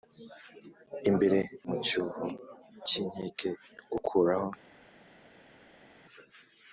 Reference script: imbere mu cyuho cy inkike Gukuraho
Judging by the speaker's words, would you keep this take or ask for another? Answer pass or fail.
pass